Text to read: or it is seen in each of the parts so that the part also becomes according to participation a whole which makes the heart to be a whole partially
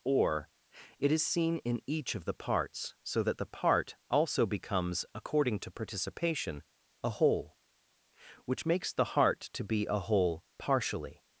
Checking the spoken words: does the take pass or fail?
pass